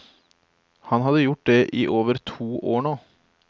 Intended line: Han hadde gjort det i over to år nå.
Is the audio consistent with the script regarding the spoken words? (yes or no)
yes